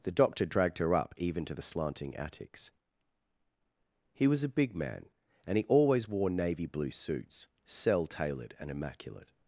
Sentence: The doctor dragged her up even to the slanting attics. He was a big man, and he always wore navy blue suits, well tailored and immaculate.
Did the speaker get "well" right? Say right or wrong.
wrong